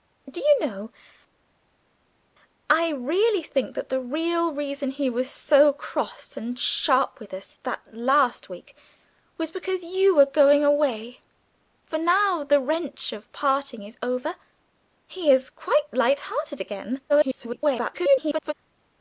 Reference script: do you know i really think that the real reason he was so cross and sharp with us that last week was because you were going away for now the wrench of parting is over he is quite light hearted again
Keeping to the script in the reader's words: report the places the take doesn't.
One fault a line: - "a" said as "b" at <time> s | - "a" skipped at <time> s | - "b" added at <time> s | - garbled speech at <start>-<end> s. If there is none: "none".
- garbled speech at 17.1-18.5 s